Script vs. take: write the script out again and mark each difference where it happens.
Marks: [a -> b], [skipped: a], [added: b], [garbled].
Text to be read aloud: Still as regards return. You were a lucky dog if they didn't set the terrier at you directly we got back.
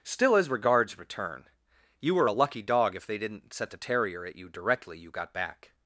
Still as regards return. You were a lucky dog if they didn't set the terrier at you directly [we -> you] got back.